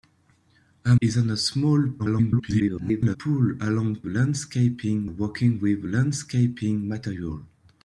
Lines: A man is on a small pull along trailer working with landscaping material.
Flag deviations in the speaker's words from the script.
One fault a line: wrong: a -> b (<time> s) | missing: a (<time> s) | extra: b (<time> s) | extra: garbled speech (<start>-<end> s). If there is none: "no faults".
missing: man (0.9 s)
extra: garbled speech (2.0-3.2 s)
wrong: trailer -> landscaping (4.1 s)